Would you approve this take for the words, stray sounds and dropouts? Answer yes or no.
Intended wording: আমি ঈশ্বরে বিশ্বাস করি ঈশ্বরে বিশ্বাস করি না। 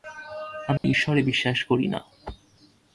no